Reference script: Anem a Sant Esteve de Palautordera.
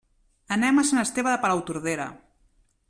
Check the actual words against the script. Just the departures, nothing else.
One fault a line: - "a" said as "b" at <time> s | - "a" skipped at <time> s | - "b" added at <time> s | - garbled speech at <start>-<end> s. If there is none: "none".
none